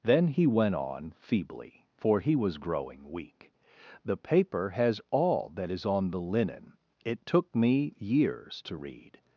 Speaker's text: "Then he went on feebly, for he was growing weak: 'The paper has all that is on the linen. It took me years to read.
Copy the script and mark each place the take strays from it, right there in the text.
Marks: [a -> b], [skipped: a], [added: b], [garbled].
"Then he went on feebly, for he was growing weak: 'The paper has all that is on the linen. It took me years to read.